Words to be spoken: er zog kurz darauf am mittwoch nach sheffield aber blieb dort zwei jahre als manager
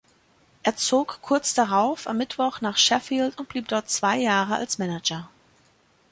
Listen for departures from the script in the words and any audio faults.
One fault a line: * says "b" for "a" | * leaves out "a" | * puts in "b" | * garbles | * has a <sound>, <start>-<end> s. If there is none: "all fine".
* says "und" for "aber"